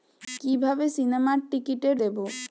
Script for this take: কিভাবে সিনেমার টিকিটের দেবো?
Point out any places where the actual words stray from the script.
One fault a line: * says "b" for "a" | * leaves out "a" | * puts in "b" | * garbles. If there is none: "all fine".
all fine